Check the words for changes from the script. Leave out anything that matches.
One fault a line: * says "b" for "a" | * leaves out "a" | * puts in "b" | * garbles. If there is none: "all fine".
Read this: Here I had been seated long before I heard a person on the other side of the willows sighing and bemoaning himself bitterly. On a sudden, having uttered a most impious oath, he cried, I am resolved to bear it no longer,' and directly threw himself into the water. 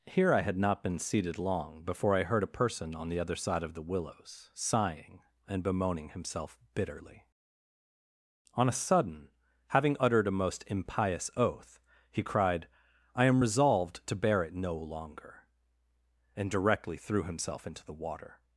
* puts in "not"